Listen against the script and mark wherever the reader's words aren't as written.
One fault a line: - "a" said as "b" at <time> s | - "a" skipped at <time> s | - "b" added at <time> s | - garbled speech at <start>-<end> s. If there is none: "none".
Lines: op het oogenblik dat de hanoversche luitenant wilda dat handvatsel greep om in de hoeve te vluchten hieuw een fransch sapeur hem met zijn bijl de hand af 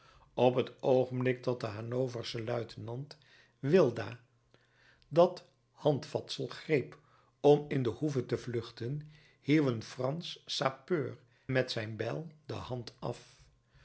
- "hem" skipped at 11.2 s